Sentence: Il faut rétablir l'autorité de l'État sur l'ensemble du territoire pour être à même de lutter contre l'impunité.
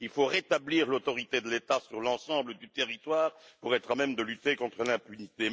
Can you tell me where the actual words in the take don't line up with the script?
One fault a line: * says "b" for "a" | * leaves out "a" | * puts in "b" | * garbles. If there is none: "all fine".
all fine